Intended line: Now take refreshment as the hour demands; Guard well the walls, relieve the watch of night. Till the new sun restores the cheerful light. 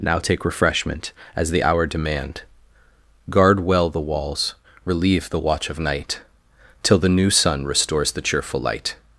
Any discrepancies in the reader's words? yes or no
yes